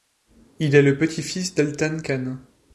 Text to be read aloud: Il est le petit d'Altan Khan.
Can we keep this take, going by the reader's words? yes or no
no